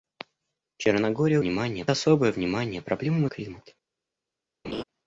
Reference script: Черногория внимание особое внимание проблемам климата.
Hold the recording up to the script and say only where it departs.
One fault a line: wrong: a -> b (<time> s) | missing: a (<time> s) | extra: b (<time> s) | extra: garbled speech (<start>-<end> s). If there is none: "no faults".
no faults